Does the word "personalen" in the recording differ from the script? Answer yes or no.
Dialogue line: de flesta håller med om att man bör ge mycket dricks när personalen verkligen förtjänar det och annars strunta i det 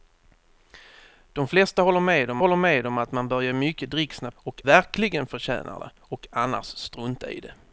yes